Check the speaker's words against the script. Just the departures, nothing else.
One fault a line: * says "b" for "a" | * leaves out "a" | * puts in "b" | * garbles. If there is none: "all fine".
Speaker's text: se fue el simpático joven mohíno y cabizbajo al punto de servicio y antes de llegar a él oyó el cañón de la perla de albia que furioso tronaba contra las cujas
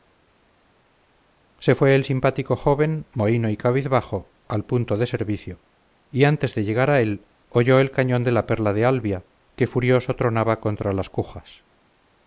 all fine